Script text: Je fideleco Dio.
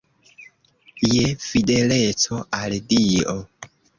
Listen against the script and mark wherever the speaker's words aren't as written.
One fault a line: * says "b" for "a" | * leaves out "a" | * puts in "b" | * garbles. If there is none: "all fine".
* puts in "al"